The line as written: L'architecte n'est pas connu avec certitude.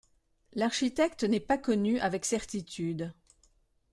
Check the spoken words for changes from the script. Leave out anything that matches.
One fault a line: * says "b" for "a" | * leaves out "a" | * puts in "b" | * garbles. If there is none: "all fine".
all fine